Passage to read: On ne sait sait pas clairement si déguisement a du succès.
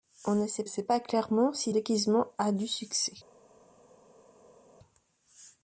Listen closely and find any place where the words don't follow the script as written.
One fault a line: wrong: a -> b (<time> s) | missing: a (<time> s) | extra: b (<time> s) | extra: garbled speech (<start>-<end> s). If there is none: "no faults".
no faults